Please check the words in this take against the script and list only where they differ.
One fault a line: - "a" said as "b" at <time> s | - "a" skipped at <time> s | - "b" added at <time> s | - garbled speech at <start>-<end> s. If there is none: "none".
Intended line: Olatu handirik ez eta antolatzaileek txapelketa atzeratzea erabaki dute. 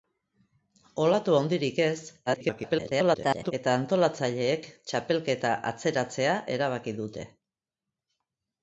- garbled speech at 2.3-3.5 s